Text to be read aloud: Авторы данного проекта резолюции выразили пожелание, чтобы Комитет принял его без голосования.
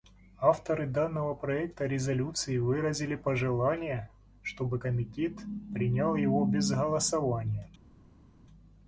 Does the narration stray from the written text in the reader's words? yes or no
no